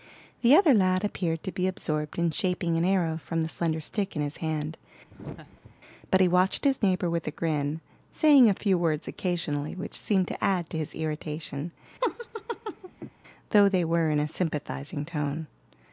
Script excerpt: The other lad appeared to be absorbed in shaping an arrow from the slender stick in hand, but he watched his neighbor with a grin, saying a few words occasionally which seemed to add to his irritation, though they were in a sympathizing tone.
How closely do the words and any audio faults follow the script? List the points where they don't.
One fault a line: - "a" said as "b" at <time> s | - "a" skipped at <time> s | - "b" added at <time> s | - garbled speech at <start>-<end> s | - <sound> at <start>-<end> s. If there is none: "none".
- "his" added at 4.2 s
- laugh at 5.1-5.8 s
- laugh at 12.0-13.1 s